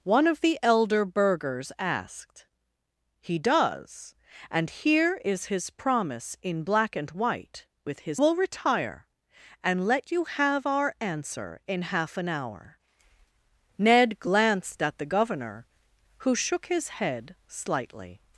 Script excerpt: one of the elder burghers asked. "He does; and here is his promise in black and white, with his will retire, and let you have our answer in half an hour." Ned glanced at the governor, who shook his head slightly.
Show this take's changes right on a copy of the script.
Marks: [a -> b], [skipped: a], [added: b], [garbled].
one of the elder burghers asked. "He does; and here is his promise in black and white, with his will retire, and let you have our answer in half an hour." Ned glanced at the governor, who shook his head slightly.